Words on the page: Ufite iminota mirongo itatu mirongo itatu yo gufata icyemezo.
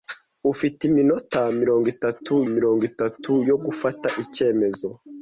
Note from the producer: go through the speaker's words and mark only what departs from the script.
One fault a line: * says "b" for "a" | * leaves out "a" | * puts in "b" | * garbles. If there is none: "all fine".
all fine